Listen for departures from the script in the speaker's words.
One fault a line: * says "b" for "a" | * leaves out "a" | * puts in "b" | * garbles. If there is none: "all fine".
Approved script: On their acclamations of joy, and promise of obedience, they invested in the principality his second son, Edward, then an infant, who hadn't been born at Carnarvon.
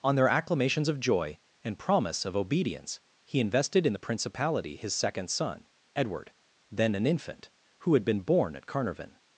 * says "he" for "they"
* says "had" for "hadn't"